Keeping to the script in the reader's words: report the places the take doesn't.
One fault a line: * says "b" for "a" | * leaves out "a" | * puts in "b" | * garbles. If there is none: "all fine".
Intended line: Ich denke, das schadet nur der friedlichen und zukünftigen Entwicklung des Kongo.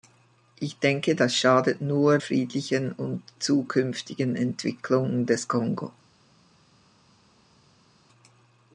* leaves out "der"